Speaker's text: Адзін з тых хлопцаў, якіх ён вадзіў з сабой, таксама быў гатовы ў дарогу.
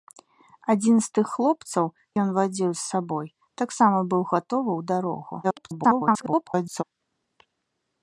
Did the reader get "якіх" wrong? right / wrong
wrong